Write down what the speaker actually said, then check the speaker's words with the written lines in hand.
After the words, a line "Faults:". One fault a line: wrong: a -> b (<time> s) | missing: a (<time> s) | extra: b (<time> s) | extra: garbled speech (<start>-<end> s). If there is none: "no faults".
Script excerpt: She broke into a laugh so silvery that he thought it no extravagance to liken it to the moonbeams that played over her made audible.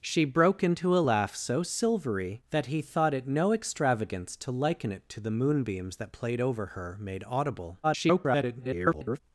She broke into a laugh so silvery that he thought it no extravagance to liken it to the moonbeams that played over her made audible. [garbled]
Faults:
extra: garbled speech (7.8-9.2 s)